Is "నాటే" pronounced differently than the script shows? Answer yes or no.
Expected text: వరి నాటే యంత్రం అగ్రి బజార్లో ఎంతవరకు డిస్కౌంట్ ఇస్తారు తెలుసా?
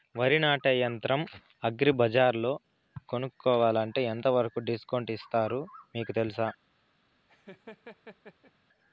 no